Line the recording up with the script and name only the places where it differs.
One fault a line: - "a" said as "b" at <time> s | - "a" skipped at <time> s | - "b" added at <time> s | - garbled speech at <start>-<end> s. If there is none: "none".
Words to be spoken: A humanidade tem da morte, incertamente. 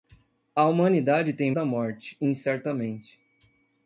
none